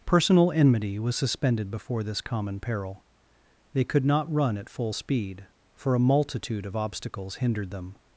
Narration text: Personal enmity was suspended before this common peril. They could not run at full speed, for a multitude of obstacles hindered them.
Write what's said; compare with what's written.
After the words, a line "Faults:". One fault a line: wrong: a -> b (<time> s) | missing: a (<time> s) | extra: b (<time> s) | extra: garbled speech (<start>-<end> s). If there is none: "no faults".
Personal enmity was suspended before this common peril. They could not run at full speed, for a multitude of obstacles hindered them.
Faults:
no faults